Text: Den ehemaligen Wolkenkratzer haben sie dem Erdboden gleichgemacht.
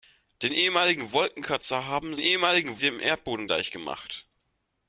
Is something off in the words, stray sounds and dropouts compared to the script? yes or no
yes